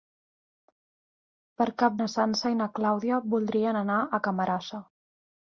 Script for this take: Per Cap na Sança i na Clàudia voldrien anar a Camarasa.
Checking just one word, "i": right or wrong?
right